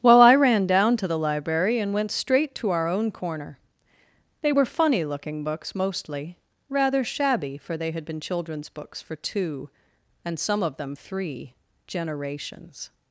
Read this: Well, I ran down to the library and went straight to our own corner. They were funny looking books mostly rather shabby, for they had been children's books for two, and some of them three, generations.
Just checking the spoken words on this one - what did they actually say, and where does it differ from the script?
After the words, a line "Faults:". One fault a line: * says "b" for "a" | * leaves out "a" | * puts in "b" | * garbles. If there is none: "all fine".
Well, I ran down to the library and went straight to our own corner. They were funny looking books mostly rather shabby, for they had been children's books for two, and some of them three, generations.
Faults:
all fine